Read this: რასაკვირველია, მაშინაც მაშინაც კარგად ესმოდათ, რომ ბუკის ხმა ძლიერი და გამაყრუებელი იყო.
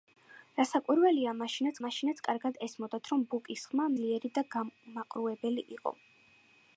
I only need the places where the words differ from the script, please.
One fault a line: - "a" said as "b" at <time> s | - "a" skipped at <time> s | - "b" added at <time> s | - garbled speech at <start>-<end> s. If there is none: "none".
none